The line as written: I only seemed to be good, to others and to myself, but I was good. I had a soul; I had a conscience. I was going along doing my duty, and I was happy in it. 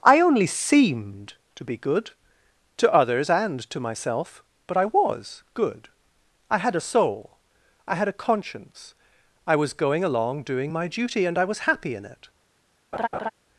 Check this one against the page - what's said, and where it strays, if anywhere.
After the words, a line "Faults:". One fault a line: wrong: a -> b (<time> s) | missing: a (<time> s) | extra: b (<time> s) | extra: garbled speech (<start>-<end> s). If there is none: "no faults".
I only seemed to be good, to others and to myself, but I was good. I had a soul; I had a conscience. I was going along doing my duty, and I was happy in it.
Faults:
no faults